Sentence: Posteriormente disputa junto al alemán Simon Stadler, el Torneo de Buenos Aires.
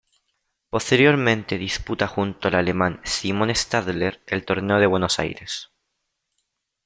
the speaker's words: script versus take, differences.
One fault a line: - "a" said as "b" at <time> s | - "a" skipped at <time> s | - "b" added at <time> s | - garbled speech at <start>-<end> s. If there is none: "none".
none